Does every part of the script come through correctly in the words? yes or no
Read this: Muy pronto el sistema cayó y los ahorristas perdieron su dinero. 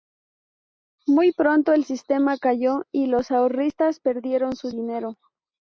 yes